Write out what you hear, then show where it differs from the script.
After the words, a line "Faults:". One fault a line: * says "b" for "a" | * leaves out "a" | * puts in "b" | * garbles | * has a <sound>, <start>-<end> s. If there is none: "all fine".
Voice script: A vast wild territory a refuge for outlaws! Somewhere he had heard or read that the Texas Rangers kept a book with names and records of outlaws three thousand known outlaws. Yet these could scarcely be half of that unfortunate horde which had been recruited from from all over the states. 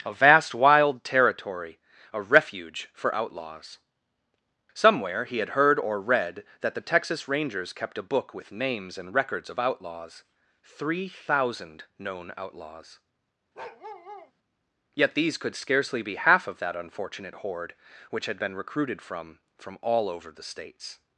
A vast wild territory a refuge for outlaws! Somewhere he had heard or read that the Texas Rangers kept a book with names and records of outlaws three thousand known outlaws. Yet these could scarcely be half of that unfortunate horde which had been recruited from from all over the states.
Faults:
* has a bark, 13.5-14.3 s